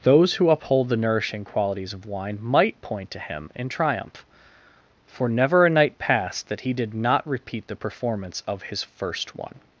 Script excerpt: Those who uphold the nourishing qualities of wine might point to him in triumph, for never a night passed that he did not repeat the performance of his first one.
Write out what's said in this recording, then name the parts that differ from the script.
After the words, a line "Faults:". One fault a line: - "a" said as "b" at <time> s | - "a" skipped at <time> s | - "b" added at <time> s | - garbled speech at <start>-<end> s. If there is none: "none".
Those who uphold the nourishing qualities of wine might point to him in triumph, for never a night passed that he did not repeat the performance of his first one.
Faults:
none